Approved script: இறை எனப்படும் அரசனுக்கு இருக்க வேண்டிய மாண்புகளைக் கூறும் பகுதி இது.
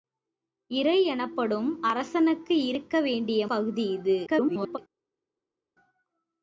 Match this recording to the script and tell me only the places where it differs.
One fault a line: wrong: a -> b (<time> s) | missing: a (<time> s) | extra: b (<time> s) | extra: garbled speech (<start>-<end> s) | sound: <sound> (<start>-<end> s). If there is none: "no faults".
missing: மாண்புகளைக் கூறும் (3.5 s)
extra: garbled speech (4.3-4.8 s)